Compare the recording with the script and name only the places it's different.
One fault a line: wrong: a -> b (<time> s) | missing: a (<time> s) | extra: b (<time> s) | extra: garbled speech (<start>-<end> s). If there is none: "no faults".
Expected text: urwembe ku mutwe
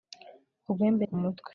no faults